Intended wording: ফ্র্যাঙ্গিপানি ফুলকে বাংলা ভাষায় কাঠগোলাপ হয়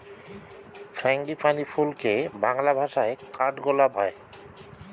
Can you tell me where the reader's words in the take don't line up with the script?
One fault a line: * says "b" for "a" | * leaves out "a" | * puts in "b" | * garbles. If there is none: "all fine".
all fine